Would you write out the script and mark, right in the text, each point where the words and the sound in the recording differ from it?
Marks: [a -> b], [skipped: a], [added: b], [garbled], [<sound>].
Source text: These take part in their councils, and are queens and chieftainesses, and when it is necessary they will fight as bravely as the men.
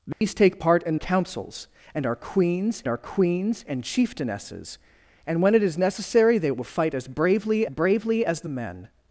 These [dropout] take part in [skipped: their] councils, and are queens [added: are queens] and chieftainesses, and when it is necessary they will fight as bravely [added: bravely] as the men.